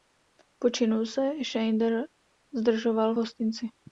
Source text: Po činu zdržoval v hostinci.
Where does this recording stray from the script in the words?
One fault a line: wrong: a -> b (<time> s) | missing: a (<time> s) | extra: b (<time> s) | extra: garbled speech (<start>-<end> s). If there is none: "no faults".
extra: se Schneider (1.1 s)